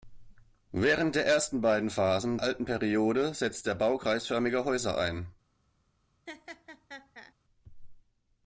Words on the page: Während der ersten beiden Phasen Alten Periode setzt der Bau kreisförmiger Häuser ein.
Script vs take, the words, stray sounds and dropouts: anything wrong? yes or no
yes